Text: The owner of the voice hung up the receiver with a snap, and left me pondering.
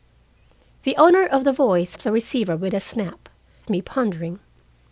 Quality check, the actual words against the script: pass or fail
fail